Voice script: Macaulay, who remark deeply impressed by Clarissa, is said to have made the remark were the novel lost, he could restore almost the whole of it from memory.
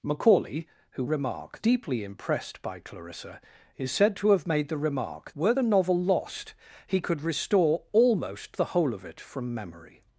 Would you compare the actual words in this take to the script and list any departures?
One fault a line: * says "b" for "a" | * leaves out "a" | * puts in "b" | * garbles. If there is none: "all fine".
all fine